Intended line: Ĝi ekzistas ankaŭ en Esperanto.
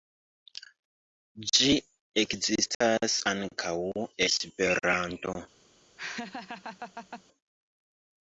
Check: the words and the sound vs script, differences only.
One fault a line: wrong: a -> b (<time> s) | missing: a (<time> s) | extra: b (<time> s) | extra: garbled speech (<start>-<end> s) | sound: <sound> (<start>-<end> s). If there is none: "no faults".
sound: dropout (2.7-2.8 s)
missing: en (3.7 s)
sound: laugh (6.0-7.2 s)